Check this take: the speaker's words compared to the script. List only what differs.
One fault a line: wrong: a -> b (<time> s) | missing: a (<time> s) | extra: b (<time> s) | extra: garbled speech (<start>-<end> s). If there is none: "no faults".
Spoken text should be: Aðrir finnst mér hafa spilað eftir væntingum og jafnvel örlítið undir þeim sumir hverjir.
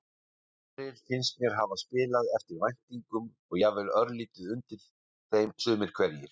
no faults